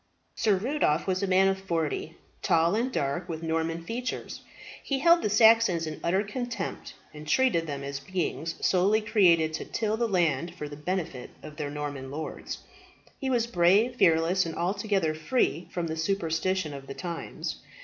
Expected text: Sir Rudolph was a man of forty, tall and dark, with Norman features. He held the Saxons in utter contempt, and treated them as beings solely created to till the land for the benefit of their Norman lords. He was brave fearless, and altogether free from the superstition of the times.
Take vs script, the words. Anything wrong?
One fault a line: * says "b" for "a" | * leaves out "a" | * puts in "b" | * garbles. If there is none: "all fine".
all fine